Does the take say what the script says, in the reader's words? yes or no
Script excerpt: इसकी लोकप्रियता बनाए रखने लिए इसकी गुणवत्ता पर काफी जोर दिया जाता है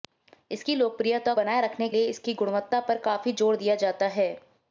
yes